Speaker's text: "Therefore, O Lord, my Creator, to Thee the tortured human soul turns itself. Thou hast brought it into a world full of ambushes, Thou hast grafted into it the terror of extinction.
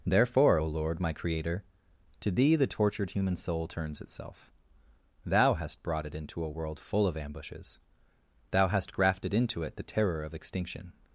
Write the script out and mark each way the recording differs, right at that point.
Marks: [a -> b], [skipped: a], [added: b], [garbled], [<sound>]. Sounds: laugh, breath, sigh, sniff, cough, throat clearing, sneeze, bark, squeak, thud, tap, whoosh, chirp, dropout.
"Therefore, O Lord, my Creator, to Thee the tortured human soul turns itself. Thou hast brought it into a world full of ambushes, Thou hast grafted into it the terror of extinction.